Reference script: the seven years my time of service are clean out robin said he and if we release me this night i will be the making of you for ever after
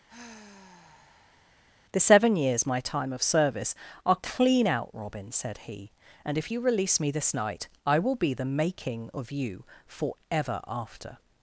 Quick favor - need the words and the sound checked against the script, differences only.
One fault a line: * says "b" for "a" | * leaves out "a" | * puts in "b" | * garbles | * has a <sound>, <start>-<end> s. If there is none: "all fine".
* has a sigh, 0.1-1.6 s
* says "you" for "we"